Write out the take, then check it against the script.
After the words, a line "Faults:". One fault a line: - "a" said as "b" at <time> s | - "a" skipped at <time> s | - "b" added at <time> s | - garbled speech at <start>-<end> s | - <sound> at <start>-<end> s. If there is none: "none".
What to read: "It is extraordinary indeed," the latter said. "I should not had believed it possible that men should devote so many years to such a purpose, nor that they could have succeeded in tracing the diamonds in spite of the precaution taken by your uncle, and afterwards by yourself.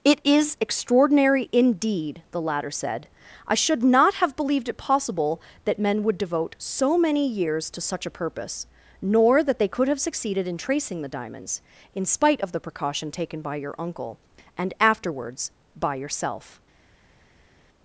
"It is extraordinary indeed," the latter said. "I should not have believed it possible that men would devote so many years to such a purpose, nor that they could have succeeded in tracing the diamonds in spite of the precaution taken by your uncle, and afterwards by yourself.
Faults:
- "had" said as "have" at 4.2 s
- "should" said as "would" at 6.0 s